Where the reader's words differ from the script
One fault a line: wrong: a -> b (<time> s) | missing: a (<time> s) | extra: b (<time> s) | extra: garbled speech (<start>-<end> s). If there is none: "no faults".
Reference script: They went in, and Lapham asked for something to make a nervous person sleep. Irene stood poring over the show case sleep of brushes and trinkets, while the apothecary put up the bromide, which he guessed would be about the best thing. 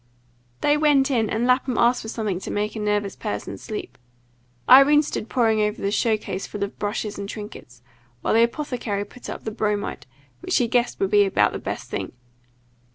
wrong: sleep -> full (6.5 s)